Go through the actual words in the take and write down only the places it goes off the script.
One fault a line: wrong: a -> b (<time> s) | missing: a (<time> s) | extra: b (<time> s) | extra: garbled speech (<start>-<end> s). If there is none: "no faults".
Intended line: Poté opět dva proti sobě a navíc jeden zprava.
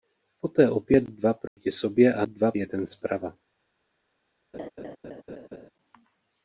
wrong: navíc -> dva (2.2 s)